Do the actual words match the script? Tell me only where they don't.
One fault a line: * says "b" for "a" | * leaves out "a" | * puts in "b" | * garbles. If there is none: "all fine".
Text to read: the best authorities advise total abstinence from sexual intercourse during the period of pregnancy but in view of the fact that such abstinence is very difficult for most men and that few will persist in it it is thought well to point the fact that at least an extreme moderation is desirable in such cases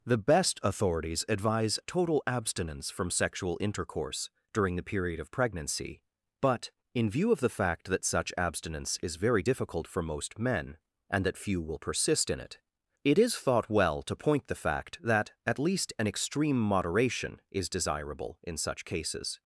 all fine